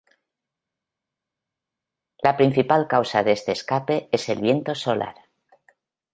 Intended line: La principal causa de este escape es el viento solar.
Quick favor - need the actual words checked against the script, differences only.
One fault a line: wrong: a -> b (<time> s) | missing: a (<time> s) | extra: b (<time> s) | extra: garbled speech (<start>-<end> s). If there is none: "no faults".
no faults